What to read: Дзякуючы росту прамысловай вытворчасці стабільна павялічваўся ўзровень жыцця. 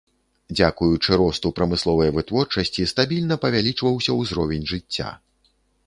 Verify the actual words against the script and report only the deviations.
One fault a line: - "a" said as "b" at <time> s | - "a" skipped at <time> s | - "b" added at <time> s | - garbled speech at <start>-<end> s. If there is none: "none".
none